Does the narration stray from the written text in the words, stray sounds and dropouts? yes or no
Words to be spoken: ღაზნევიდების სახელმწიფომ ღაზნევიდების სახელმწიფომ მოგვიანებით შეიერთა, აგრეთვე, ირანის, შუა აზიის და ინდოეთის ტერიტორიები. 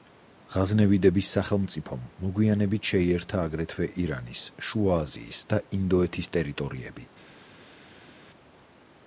yes